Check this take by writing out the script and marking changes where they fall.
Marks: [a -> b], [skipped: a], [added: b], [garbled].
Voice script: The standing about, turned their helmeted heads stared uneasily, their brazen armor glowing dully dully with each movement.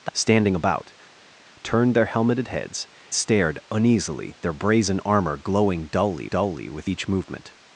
The standing about, turned their helmeted heads stared uneasily, their brazen armor glowing dully dully with each movement.